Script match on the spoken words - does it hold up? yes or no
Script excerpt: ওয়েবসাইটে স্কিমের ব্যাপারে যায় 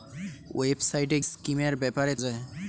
yes